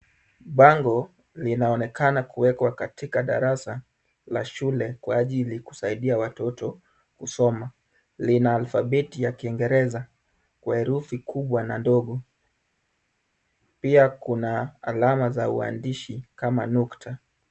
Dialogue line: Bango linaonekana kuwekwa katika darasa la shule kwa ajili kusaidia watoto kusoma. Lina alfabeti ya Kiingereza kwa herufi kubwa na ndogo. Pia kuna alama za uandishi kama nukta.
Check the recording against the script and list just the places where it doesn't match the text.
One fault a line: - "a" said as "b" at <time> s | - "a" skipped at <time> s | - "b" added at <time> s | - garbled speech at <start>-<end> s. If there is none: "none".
none